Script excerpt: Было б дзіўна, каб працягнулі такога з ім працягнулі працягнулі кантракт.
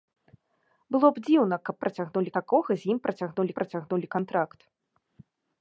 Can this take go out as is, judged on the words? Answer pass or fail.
pass